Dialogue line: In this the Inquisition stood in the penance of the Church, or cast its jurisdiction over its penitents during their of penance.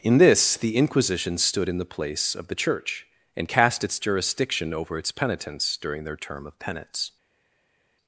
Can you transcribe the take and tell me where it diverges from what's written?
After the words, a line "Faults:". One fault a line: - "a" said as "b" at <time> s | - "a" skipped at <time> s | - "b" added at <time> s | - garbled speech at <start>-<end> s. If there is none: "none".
In this the Inquisition stood in the place of the Church, and cast its jurisdiction over its penitents during their term of penance.
Faults:
- "penance" said as "place" at 1.9 s
- "or" said as "and" at 3.4 s
- "term" added at 6.1 s